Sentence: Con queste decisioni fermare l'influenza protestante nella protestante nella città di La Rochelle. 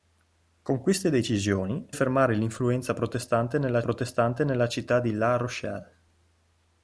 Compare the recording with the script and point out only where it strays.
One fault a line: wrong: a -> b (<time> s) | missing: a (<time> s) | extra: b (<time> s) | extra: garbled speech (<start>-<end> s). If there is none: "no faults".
no faults